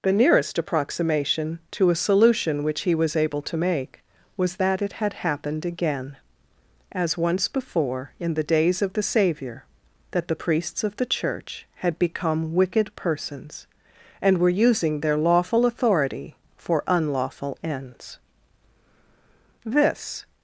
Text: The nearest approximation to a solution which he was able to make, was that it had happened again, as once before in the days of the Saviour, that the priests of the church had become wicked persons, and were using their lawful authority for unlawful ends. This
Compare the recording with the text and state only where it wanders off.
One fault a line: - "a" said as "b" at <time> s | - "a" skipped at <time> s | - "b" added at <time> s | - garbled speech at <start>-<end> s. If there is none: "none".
none